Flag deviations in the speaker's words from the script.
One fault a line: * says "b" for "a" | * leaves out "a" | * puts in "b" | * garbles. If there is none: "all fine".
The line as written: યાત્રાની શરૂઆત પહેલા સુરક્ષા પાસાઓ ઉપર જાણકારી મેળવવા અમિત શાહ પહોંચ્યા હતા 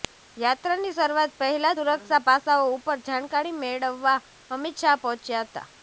all fine